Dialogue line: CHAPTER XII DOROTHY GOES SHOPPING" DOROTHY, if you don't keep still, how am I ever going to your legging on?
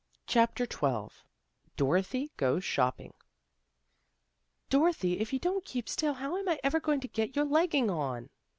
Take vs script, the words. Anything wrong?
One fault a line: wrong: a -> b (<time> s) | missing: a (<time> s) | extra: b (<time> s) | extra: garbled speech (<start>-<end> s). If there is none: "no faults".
extra: get (7.1 s)